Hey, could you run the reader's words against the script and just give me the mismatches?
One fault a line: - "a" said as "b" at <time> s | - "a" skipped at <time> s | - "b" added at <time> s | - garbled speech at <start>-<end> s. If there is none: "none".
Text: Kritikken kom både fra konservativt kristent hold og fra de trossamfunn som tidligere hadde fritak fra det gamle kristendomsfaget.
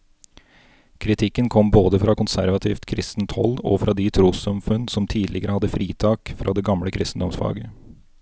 none